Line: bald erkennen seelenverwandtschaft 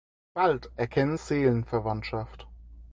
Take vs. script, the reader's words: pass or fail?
pass